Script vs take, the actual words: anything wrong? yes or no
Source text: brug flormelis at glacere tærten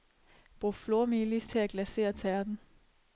yes